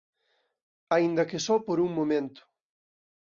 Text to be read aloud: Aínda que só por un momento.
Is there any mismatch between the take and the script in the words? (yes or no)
no